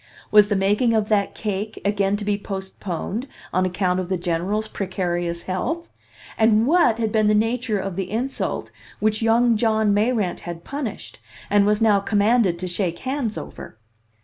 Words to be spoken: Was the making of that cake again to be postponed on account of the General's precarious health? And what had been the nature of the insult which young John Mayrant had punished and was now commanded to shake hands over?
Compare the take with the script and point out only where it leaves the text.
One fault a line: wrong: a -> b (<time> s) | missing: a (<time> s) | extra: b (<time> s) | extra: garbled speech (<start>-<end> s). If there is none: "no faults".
no faults